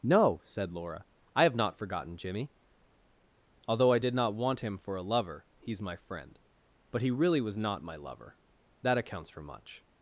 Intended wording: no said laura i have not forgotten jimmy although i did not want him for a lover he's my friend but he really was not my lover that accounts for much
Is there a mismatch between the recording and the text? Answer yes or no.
no